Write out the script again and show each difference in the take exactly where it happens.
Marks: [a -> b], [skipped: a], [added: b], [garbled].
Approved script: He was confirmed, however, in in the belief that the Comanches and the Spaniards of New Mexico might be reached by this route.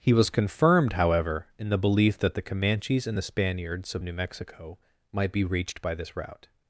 He was confirmed, however, in [skipped: in] the belief that the Comanches and the Spaniards of New Mexico might be reached by this route.